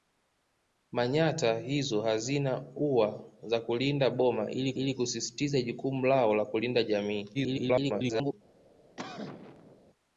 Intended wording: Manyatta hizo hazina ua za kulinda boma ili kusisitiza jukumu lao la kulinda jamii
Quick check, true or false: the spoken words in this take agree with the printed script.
false